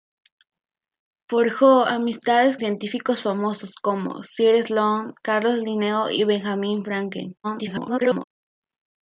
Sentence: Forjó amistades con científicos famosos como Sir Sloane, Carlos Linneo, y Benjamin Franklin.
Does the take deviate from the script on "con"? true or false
true